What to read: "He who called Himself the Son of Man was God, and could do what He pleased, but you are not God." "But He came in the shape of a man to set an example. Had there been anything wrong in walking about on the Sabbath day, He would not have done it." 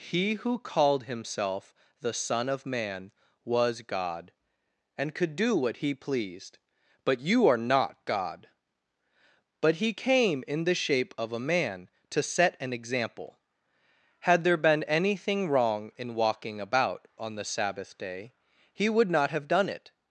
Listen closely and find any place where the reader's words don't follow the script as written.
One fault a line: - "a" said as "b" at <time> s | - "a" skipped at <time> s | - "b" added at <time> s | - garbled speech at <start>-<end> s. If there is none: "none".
none